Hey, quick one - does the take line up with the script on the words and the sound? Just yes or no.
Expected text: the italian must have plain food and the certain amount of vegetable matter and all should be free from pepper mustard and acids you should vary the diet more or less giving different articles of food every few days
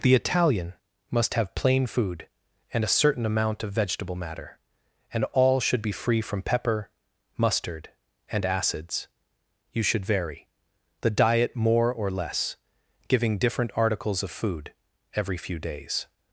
no